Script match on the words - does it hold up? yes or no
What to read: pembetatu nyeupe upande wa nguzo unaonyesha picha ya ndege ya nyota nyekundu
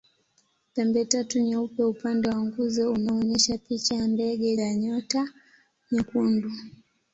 yes